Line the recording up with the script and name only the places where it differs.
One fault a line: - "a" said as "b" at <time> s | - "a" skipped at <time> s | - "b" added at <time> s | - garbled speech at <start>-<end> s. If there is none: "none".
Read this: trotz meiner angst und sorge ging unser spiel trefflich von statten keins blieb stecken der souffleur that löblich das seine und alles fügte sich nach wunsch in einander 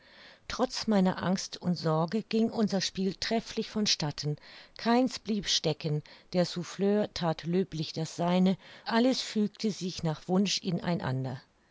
- "und" skipped at 8.6 s